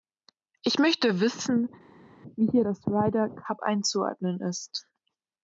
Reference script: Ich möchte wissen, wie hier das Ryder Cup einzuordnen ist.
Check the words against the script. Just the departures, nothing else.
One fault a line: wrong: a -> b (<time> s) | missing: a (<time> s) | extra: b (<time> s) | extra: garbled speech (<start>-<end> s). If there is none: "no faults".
no faults